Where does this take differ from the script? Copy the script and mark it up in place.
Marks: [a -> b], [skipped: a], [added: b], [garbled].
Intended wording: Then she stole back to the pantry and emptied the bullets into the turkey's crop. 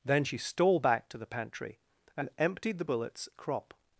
Then she stole back to the pantry and emptied the bullets [skipped: into the turkey's] crop.